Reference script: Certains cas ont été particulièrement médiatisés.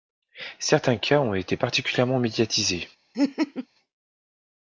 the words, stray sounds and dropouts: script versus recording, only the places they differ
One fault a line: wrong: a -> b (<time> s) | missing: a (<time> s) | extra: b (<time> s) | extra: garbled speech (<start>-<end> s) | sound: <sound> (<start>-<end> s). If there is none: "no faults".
sound: laugh (3.1-3.7 s)